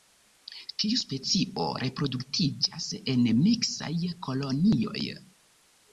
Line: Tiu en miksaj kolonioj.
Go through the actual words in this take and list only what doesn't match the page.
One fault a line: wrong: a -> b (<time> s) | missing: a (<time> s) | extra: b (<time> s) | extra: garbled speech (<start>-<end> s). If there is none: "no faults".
extra: specio reproduktiĝas (1.0 s)